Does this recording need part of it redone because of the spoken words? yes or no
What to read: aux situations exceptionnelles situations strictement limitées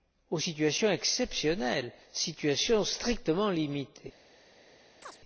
no